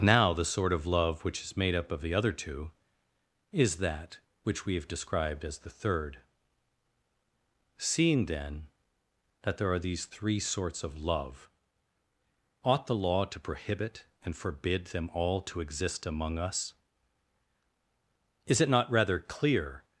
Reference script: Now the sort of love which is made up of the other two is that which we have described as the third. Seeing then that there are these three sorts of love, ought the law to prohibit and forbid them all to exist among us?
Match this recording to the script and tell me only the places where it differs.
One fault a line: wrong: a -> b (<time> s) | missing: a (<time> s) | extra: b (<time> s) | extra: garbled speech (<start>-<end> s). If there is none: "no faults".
extra: Is it not rather clear (18.5 s)